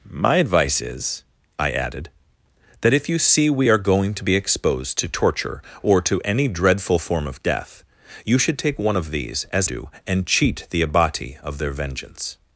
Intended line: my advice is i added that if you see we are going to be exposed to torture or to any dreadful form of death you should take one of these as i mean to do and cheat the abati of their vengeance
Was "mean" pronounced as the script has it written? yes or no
no